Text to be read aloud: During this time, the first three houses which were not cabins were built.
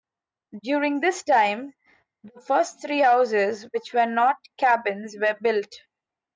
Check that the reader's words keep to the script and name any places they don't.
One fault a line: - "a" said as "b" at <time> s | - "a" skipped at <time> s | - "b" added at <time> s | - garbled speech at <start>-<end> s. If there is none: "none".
none